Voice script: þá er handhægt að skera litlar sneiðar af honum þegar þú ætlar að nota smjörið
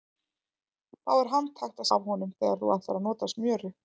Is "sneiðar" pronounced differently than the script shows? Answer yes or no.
yes